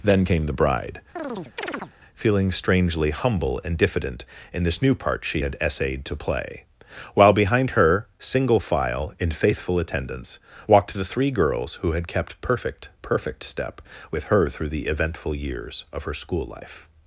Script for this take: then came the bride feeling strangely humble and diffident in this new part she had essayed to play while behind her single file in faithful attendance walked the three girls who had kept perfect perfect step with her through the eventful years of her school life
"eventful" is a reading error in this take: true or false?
false